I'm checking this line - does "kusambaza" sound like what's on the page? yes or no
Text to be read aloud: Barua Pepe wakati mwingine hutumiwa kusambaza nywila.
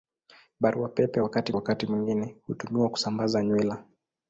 yes